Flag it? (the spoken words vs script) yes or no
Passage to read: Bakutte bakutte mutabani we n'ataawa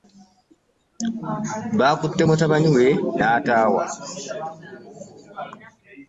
yes